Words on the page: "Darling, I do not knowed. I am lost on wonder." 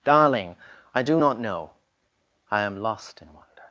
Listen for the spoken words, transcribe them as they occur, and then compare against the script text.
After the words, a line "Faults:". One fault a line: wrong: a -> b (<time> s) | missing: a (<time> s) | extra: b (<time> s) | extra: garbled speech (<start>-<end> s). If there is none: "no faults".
"Darling, I do not know. I am lost in wonder."
Faults:
wrong: knowed -> know (1.4 s)
wrong: on -> in (3.2 s)